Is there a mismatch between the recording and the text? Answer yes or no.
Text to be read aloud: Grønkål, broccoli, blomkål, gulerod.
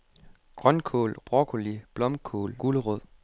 no